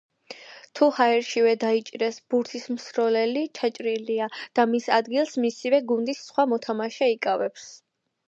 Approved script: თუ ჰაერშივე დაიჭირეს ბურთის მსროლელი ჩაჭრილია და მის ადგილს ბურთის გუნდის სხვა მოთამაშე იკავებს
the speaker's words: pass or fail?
fail